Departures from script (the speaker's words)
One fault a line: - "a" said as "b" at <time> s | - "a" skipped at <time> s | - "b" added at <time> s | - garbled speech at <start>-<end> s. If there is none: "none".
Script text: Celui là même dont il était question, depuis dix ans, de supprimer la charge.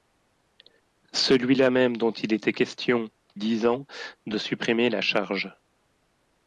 - "depuis" skipped at 3.1 s